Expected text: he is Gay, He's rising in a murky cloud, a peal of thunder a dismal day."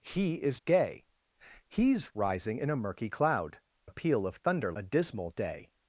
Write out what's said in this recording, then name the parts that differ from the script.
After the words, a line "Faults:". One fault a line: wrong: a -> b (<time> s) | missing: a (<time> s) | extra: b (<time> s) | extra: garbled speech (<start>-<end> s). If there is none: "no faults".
he is Gay, He's rising in a murky cloud, a peal of thunder a dismal day."
Faults:
no faults